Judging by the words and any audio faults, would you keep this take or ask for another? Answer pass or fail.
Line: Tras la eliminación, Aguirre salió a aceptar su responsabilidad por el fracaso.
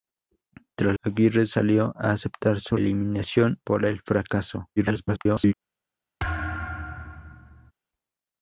fail